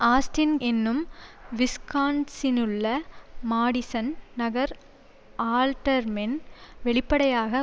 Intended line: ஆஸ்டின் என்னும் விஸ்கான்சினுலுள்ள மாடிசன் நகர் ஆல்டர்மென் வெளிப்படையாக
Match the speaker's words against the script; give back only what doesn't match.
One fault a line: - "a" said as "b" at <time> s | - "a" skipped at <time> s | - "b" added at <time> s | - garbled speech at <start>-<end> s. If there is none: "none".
none